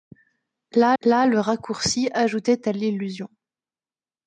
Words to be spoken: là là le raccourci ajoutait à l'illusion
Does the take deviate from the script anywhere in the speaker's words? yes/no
no